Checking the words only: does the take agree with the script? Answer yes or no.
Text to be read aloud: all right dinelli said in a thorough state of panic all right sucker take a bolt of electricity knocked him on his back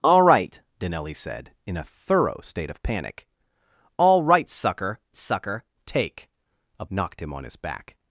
no